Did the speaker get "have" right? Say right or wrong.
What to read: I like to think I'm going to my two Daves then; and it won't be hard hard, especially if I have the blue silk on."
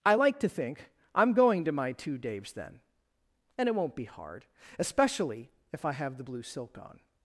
right